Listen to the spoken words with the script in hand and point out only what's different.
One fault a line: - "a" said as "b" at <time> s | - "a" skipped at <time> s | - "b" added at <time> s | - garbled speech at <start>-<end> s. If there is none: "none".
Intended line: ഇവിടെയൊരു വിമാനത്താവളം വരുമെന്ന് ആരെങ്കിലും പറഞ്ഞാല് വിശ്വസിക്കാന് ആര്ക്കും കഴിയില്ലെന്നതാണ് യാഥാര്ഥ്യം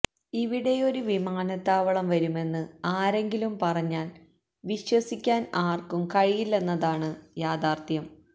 none